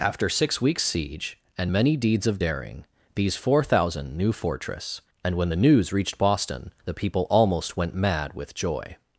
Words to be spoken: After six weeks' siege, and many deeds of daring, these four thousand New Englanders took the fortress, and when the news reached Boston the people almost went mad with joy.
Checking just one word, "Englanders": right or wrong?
wrong